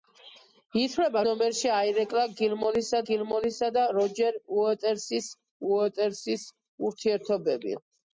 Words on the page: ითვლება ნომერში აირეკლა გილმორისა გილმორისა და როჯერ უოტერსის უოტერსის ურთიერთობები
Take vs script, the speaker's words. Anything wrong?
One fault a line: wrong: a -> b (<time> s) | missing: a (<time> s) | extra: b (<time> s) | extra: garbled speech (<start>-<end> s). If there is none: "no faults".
no faults